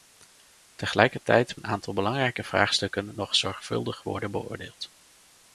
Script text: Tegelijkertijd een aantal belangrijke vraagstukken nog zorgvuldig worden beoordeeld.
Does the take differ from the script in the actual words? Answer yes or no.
no